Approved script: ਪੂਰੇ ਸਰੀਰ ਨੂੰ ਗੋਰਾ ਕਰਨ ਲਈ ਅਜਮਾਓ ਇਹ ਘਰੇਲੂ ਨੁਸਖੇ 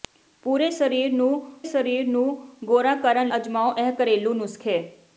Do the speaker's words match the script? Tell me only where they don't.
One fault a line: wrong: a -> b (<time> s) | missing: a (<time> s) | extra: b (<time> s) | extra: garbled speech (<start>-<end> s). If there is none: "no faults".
extra: ਸਰੀਰ ਨੂੰ (1.6 s)
missing: ਲਈ (3.3 s)